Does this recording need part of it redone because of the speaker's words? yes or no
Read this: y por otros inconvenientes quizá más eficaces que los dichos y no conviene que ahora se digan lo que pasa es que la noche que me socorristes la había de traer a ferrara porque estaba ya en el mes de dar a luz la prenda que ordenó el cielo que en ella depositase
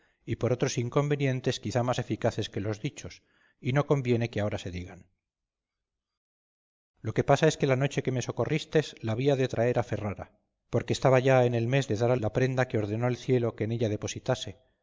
yes